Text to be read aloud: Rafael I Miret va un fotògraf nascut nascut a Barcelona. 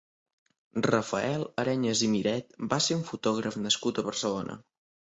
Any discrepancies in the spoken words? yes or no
yes